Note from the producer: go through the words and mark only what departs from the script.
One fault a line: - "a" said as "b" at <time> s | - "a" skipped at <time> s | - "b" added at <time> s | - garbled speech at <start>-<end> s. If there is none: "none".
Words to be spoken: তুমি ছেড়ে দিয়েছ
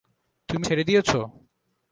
none